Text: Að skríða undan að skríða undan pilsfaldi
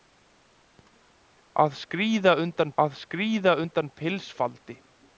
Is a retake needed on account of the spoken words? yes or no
no